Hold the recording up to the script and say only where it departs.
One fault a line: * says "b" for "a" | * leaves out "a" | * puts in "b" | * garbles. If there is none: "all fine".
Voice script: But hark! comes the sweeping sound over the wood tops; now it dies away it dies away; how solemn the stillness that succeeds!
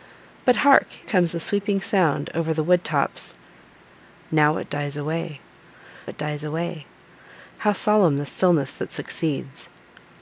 all fine